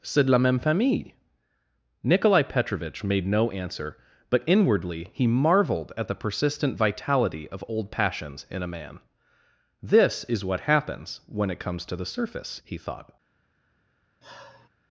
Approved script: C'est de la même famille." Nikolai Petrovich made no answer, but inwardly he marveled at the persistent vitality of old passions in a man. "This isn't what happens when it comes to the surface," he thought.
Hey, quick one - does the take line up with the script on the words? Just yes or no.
no